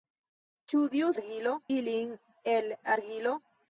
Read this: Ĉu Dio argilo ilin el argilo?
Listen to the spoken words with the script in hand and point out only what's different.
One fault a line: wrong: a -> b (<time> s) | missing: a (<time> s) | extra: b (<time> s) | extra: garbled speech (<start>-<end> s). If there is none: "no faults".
no faults